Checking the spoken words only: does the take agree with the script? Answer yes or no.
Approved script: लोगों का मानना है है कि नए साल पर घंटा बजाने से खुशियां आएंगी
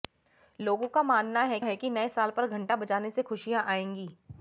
yes